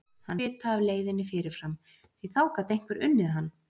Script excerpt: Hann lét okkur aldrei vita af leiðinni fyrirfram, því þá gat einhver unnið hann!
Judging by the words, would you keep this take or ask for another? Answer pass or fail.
fail